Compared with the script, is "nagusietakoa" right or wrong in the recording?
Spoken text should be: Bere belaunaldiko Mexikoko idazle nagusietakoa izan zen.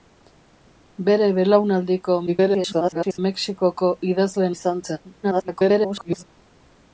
wrong